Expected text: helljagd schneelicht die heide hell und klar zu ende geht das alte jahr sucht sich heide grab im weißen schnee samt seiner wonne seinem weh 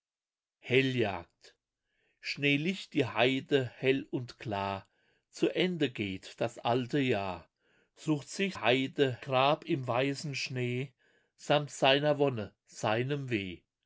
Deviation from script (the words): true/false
false